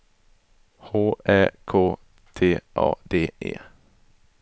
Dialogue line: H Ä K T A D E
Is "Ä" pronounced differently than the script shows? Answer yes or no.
no